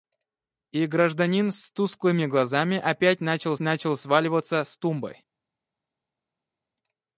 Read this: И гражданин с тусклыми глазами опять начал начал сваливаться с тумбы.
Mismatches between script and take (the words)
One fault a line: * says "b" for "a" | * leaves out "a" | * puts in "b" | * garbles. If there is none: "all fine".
all fine